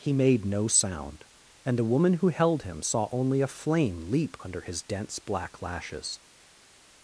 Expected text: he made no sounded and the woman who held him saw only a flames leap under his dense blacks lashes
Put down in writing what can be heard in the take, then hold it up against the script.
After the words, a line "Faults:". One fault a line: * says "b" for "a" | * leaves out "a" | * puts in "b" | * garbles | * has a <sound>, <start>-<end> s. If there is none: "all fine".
he made no sound and the woman who held him saw only a flame leap under his dense black lashes
Faults:
* says "sound" for "sounded"
* says "flame" for "flames"
* says "black" for "blacks"